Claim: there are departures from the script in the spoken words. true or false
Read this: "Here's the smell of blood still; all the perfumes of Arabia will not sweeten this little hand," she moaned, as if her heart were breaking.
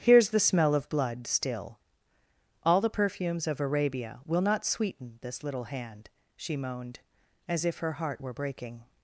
false